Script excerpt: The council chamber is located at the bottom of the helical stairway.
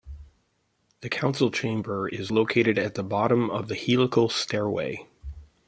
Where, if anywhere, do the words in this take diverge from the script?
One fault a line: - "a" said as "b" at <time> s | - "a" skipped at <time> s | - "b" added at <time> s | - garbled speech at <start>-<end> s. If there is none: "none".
none